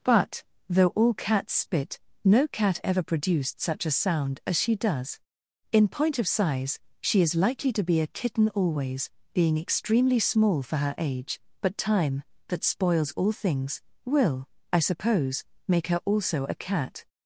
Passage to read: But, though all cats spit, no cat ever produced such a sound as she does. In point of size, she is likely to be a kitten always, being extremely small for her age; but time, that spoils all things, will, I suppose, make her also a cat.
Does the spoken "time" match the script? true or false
true